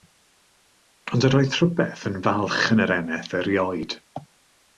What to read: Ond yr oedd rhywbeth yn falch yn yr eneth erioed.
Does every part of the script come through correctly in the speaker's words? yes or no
yes